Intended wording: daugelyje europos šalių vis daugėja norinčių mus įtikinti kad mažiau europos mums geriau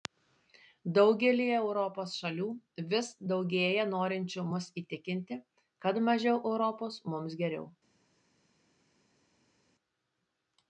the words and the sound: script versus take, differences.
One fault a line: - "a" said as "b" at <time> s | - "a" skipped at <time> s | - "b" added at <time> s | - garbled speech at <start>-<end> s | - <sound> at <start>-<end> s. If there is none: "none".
none